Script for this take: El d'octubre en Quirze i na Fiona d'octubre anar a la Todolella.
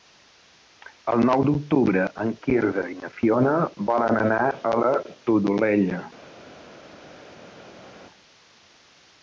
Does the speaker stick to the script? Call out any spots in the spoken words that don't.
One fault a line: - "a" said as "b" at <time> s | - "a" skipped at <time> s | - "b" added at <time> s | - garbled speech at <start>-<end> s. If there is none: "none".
- "nou" added at 1.3 s
- "d'octubre" said as "volen" at 3.9 s